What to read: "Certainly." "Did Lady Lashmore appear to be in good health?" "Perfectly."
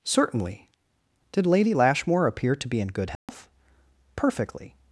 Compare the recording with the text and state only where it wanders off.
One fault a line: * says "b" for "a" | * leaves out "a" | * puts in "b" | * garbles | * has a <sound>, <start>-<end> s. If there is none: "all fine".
* has a dropout, 3.2-3.3 s